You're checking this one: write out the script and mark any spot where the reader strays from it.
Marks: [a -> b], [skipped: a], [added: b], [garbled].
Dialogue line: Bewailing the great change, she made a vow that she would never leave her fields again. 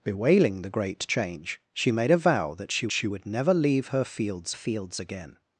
Bewailing the great change, she made a vow that she [added: she] would never leave her fields [added: fields] again.